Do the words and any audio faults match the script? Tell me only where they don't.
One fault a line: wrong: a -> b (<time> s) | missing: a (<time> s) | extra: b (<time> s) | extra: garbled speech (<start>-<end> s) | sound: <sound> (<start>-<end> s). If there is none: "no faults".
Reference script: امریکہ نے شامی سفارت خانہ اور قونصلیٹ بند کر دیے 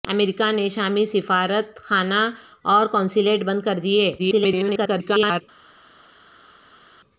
extra: garbled speech (4.2-5.4 s)